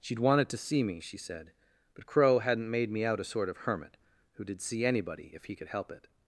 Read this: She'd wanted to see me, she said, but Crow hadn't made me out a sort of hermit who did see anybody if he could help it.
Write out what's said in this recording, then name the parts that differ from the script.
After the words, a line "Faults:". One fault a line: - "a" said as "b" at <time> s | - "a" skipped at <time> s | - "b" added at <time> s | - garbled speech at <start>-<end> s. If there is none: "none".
She'd wanted to see me, she said, but Crow hadn't made me out a sort of hermit who did see anybody if he could help it.
Faults:
none